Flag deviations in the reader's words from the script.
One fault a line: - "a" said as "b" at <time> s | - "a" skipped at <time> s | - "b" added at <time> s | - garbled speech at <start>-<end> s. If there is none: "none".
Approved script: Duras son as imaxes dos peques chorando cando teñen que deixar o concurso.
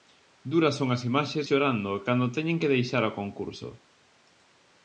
- "dos peques" skipped at 1.4 s